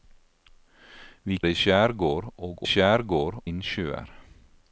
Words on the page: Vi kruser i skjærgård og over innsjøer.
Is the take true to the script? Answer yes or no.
no